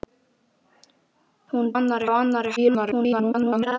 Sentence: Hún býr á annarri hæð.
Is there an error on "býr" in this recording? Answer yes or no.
yes